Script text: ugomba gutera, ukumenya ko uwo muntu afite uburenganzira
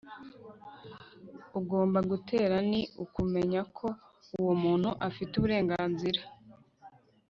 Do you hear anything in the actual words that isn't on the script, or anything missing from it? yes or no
yes